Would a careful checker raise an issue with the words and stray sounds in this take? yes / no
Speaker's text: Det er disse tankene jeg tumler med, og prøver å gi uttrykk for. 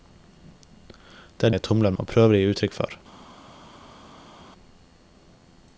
yes